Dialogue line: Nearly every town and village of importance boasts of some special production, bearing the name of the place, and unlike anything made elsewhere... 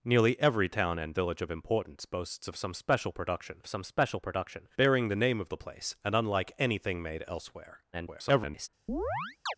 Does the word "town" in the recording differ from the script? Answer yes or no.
no